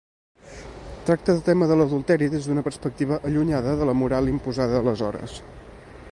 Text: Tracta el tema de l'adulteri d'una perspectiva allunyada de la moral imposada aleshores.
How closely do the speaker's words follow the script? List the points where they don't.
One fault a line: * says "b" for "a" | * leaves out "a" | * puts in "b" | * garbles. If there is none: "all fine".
* puts in "des"